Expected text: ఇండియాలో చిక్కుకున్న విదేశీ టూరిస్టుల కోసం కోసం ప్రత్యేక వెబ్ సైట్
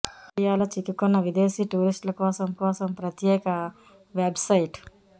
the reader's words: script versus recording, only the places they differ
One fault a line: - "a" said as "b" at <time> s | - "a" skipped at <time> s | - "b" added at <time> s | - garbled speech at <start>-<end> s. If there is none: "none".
none